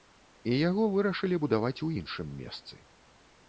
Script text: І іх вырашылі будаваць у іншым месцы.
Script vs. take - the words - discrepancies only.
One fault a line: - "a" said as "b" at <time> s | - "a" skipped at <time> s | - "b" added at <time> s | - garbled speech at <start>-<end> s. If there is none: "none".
- "іх" said as "яго" at 0.7 s